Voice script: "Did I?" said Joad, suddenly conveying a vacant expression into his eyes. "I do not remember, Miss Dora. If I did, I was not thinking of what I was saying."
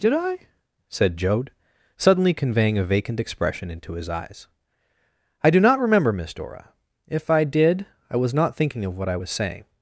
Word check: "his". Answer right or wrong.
right